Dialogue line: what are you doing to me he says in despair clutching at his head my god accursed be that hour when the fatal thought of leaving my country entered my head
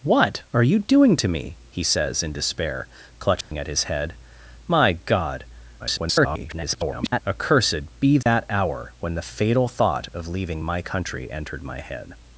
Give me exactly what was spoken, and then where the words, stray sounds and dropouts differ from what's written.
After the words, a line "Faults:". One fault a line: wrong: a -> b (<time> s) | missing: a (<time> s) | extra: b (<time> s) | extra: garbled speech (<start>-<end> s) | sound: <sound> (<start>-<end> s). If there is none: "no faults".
what are you doing to me he says in despair clutching at his head my god [garbled] accursed be that hour when the fatal thought of leaving my country entered my head
Faults:
sound: dropout (3.4-3.5 s)
extra: garbled speech (5.8-7.2 s)
sound: dropout (8.2-8.3 s)